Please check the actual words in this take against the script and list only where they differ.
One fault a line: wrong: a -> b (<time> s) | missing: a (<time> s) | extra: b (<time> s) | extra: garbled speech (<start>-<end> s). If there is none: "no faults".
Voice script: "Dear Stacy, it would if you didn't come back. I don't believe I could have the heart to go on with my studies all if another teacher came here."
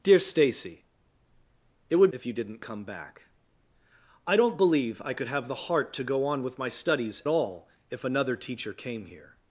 no faults